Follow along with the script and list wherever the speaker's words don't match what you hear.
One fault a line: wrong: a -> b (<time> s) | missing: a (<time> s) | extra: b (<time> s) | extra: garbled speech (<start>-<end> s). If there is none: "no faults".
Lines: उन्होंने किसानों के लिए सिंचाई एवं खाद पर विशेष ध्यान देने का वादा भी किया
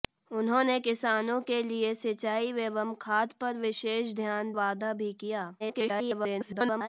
missing: देने का (4.5 s)
extra: garbled speech (5.6-6.9 s)